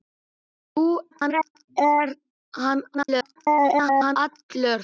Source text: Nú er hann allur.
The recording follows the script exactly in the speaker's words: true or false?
false